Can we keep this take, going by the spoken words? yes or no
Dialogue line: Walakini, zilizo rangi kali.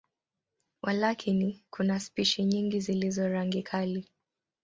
no